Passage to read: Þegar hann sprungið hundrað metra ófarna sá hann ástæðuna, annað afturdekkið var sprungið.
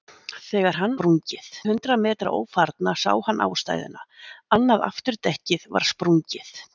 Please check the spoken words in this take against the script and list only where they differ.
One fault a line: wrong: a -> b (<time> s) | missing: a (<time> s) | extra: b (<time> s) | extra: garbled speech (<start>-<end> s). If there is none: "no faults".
no faults